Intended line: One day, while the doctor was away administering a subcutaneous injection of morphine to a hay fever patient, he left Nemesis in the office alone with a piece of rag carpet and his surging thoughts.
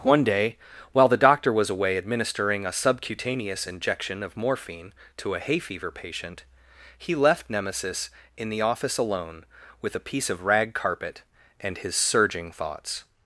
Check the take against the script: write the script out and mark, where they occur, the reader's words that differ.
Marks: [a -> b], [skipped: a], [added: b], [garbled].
One day, while the doctor was away administering a subcutaneous injection of morphine to a hay fever patient, he left Nemesis in the office alone with a piece of rag carpet and his surging thoughts.